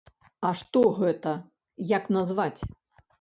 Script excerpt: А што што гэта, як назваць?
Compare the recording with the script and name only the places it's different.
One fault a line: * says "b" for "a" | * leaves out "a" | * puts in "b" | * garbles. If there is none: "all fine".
* leaves out "што"